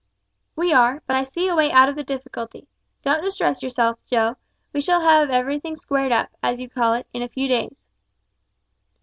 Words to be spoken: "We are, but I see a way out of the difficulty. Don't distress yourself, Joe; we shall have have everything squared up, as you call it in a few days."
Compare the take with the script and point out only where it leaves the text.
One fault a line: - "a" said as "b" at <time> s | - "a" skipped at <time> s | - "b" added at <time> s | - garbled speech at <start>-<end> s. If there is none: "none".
- "have" skipped at 5.3 s